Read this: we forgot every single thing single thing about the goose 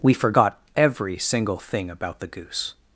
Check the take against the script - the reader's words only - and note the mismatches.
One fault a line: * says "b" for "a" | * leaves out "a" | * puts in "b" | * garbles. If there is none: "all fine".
* leaves out "single thing"